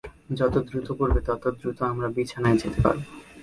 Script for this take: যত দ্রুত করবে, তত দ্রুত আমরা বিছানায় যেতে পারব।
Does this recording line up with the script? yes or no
yes